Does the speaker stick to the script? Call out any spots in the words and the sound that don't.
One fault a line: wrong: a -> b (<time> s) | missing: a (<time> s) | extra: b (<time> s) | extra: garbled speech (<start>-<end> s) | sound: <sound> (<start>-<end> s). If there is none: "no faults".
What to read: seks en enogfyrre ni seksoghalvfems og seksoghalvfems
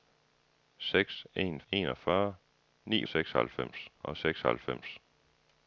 no faults